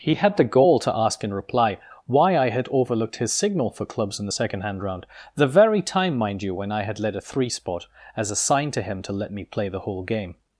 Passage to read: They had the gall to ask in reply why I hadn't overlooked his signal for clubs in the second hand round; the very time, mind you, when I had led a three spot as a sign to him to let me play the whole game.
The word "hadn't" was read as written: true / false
false